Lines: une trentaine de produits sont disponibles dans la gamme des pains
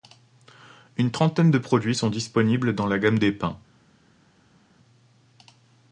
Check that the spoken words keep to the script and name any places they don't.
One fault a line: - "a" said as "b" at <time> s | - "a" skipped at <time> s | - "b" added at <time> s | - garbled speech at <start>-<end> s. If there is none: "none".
none